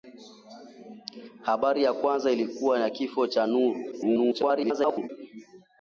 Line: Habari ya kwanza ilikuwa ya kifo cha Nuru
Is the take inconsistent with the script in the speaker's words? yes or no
yes